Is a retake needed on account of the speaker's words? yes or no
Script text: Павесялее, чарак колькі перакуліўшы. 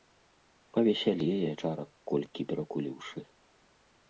no